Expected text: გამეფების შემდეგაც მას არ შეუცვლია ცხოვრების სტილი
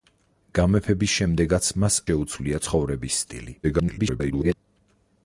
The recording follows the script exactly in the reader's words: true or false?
false